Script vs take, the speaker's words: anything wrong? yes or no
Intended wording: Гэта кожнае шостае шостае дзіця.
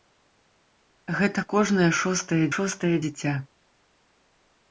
no